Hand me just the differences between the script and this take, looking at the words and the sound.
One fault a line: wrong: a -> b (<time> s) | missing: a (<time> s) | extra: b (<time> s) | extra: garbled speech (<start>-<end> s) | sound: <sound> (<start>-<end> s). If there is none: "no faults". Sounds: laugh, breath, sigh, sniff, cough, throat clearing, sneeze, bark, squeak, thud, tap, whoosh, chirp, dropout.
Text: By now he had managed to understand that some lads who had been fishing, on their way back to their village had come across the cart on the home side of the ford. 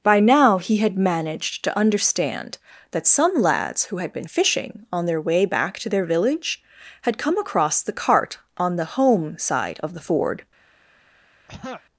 sound: throat clearing (11.5-11.8 s)